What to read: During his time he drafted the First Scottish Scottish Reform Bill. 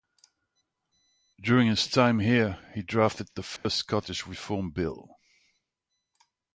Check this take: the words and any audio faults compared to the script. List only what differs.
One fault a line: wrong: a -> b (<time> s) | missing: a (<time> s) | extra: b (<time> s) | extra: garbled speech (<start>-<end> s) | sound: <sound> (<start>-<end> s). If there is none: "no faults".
extra: here (2.2 s)
sound: dropout (3.6-3.6 s)
missing: Scottish (4.2 s)